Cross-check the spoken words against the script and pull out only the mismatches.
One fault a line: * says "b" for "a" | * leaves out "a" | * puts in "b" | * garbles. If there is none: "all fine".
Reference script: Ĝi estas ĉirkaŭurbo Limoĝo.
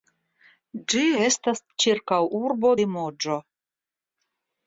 all fine